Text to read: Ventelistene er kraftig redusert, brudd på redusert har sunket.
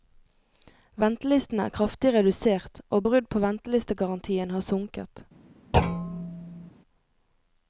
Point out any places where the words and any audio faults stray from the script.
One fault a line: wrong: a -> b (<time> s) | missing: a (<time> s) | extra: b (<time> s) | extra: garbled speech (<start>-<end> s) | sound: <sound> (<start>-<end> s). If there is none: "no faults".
extra: og (2.9 s)
wrong: redusert -> ventelistegarantien (3.5 s)
sound: thud (5.7-6.7 s)